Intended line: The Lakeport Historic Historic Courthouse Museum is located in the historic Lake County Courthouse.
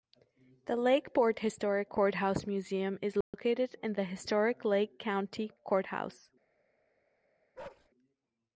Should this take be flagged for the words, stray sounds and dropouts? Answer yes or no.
yes